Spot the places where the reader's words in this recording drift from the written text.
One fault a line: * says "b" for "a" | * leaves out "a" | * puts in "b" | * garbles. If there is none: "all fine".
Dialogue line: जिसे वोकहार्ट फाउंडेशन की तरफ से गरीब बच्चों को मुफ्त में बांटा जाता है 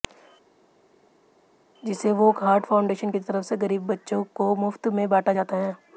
all fine